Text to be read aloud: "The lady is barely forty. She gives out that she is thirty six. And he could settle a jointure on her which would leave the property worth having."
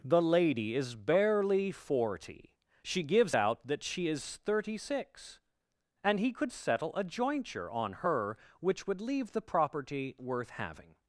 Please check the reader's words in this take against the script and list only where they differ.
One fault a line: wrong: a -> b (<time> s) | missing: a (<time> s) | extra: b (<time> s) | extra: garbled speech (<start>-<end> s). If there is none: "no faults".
no faults